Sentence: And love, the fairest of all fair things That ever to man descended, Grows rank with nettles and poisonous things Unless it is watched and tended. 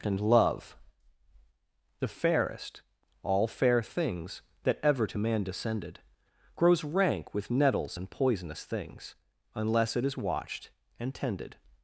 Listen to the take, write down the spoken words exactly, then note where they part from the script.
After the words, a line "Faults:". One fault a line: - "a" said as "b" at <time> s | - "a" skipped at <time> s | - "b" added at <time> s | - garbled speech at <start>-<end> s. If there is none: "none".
And love, the fairest all fair things That ever to man descended, Grows rank with nettles and poisonous things Unless it is watched and tended.
Faults:
- "of" skipped at 2.8 s